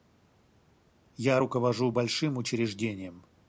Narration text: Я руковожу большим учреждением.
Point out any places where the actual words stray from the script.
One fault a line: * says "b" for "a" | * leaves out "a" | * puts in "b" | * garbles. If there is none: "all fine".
all fine